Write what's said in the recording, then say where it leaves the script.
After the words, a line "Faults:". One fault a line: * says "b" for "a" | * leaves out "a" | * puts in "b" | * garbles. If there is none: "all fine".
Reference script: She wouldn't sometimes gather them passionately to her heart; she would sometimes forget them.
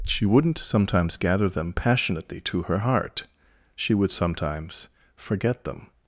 She wouldn't sometimes gather them passionately to her heart; she would sometimes forget them.
Faults:
all fine